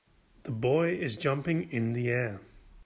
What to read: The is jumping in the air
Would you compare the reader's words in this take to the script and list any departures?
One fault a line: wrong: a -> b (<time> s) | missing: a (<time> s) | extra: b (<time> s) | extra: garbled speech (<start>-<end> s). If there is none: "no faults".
extra: boy (0.5 s)